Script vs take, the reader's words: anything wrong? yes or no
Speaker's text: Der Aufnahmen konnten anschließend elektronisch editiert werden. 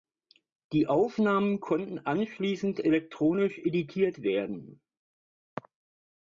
yes